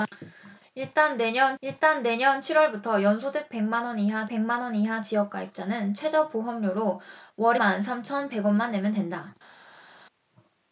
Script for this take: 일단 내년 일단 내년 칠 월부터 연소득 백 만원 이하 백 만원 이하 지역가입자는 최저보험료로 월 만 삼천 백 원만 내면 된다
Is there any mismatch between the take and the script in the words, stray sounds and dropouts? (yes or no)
no